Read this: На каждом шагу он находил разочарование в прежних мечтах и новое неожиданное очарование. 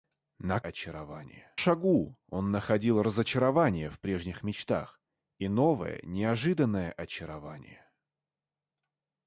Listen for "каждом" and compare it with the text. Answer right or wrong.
wrong